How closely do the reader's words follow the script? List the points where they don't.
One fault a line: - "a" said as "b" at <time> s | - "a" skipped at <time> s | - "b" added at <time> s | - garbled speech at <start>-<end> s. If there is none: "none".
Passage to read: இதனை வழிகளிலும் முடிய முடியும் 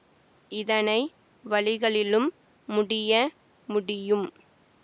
none